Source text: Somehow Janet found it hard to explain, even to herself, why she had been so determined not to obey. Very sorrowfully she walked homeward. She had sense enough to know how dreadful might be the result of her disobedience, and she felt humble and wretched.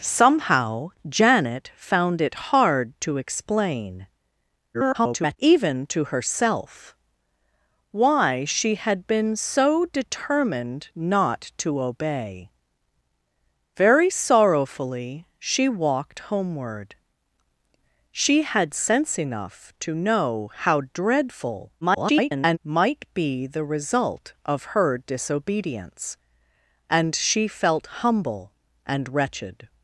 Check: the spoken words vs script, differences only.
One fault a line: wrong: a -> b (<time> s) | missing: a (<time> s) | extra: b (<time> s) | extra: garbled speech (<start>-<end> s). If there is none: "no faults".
extra: garbled speech (4.7-5.4 s)
extra: garbled speech (21.8-22.6 s)